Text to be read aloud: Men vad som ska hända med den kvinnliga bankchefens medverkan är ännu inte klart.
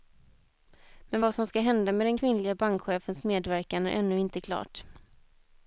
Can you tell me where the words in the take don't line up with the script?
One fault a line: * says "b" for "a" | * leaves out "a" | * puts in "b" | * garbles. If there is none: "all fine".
all fine